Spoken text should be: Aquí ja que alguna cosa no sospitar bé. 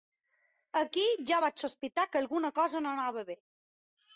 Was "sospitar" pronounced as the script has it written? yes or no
no